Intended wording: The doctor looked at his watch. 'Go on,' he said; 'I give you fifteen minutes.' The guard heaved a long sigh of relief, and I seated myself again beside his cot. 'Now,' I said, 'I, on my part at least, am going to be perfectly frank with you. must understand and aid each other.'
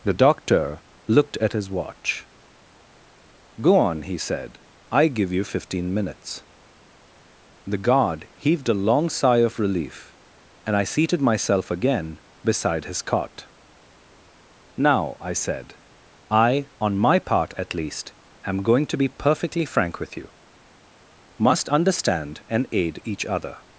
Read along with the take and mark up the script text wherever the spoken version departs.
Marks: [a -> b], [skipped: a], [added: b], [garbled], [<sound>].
The doctor looked at his watch. 'Go on,' he said; 'I give you fifteen minutes.' The guard heaved a long sigh of relief, and I seated myself again beside his cot. 'Now,' I said, 'I, on my part at least, am going to be perfectly frank with you. must understand and aid each other.'